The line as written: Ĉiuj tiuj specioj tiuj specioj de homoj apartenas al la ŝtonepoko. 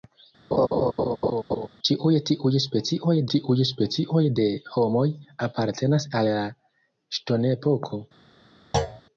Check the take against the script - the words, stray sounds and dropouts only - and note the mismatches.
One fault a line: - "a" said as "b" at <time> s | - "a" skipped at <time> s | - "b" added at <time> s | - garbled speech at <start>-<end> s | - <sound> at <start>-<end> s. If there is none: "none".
- laugh at 0.5-1.7 s
- thud at 8.7-9.0 s